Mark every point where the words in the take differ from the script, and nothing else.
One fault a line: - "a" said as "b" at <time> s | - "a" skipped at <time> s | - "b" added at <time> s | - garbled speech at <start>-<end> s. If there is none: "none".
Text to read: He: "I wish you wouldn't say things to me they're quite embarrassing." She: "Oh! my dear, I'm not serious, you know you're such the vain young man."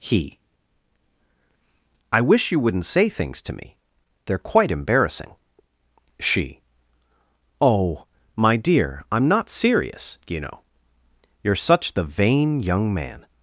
none